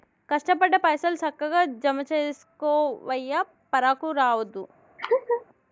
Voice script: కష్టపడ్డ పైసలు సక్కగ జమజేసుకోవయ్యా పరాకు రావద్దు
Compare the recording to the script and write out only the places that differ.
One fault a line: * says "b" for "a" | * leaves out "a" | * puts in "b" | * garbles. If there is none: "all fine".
all fine